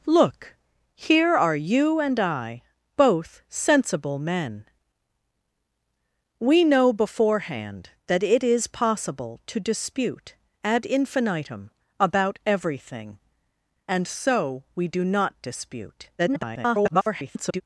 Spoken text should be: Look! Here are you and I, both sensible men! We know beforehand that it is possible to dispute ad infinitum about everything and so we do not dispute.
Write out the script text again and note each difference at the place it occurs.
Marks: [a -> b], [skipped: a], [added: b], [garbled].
Look! Here are you and I, both sensible men! We know beforehand that it is possible to dispute ad infinitum about everything and so we do not dispute. [garbled]